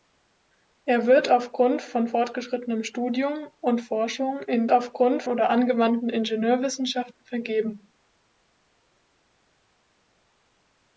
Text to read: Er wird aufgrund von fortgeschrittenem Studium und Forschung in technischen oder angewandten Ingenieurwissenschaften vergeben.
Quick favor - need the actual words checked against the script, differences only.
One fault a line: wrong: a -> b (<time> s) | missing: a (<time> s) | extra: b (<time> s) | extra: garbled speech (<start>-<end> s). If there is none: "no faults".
wrong: technischen -> aufgrund (4.7 s)